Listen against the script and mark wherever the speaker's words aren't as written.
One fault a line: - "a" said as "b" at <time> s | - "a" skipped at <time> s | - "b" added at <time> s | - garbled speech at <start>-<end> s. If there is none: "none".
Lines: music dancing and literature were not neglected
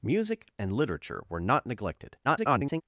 - "dancing" skipped at 0.5 s
- garbled speech at 2.2-2.8 s